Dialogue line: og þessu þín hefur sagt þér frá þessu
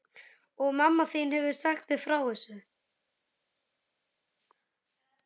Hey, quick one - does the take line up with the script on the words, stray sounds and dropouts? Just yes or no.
no